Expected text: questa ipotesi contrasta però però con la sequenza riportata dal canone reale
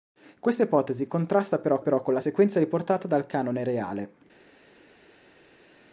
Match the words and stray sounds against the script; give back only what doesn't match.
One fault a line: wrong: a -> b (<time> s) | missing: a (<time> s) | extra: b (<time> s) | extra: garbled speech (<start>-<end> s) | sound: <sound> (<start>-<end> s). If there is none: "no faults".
no faults